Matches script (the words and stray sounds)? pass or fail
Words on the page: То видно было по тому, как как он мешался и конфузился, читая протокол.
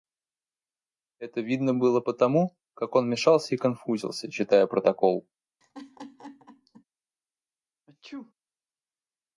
fail